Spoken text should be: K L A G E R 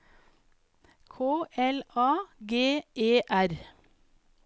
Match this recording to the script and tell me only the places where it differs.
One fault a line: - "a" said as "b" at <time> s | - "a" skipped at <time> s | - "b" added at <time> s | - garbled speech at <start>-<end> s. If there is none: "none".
none